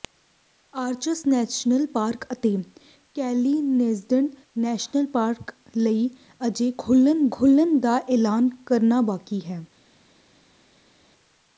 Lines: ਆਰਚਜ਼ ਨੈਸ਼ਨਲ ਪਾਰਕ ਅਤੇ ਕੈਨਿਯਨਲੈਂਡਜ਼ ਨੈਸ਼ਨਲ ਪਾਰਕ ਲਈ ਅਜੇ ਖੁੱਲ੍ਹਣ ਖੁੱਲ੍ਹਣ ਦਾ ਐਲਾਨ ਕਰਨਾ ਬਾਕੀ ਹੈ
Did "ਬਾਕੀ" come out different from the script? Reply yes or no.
no